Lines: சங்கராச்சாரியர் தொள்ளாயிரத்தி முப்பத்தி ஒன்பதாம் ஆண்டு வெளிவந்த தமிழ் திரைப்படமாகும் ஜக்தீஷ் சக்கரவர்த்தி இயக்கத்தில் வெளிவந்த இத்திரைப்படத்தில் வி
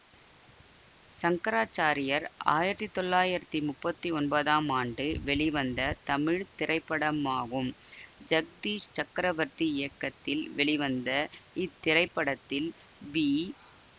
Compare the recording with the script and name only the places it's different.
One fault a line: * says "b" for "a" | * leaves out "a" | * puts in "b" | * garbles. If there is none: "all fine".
* puts in "ஆயிரத்தி"